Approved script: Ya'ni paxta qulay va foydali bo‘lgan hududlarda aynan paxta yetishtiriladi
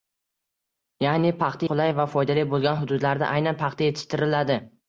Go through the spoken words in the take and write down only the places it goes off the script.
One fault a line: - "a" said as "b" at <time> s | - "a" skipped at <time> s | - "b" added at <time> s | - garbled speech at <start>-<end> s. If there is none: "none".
none